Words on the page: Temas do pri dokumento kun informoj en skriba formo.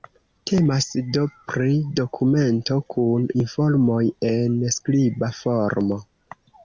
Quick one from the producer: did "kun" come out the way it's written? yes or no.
yes